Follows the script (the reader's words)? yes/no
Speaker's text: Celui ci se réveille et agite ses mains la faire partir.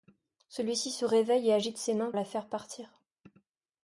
yes